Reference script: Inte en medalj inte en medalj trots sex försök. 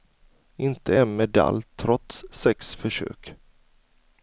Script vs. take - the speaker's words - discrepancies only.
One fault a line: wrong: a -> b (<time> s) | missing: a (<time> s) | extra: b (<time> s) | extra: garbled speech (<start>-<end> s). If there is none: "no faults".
missing: inte en medalj (1.6 s)